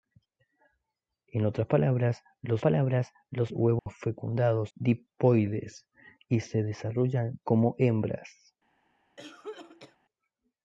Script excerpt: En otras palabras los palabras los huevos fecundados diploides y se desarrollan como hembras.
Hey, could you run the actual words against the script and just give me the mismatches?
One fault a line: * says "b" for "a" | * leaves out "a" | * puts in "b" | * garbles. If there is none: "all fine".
all fine